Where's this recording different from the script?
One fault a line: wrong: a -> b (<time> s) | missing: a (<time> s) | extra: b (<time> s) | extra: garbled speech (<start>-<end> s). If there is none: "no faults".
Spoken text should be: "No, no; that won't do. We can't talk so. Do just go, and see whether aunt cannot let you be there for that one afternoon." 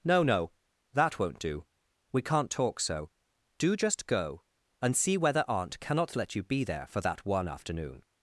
no faults